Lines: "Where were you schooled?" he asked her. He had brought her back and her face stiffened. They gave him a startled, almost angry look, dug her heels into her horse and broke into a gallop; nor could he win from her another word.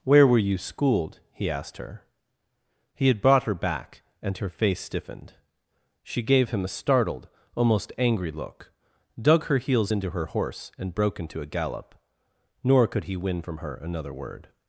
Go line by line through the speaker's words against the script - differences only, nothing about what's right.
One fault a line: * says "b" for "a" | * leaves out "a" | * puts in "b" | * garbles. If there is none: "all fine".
* says "She" for "They"